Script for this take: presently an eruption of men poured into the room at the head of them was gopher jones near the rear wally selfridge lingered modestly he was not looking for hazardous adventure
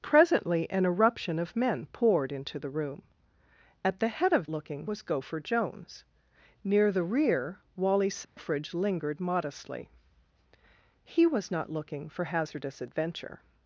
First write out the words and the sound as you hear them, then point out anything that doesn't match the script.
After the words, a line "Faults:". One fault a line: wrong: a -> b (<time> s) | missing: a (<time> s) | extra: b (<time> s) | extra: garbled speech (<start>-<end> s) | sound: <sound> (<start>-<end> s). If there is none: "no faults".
presently an eruption of men poured into the room at the head of looking was gopher jones near the rear wally selfridge lingered modestly he was not looking for hazardous adventure
Faults:
wrong: them -> looking (4.5 s)
sound: dropout (8.2-8.4 s)